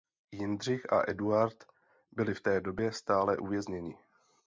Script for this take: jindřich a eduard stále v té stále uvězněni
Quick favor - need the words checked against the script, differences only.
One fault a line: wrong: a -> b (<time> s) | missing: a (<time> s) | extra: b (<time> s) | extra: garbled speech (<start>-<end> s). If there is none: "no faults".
wrong: stále -> byli (2.1 s)
extra: době (2.6 s)